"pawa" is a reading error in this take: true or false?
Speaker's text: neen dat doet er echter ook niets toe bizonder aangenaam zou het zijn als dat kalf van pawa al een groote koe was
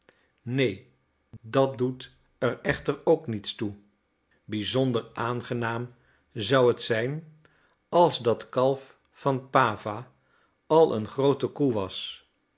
false